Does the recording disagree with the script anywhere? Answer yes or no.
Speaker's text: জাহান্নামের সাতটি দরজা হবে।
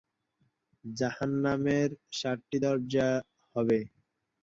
no